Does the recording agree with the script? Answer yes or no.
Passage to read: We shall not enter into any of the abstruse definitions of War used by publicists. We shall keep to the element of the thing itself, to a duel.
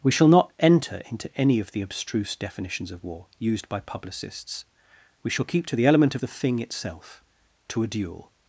yes